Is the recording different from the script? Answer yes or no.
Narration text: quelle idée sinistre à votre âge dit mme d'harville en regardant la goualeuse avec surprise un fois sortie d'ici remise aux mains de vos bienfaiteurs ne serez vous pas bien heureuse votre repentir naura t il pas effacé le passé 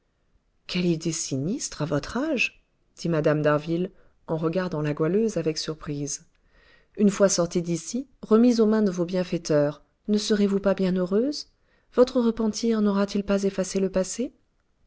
yes